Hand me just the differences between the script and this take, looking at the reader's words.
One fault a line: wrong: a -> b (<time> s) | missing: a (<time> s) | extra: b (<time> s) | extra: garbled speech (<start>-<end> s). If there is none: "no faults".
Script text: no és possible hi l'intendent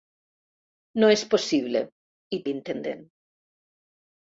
no faults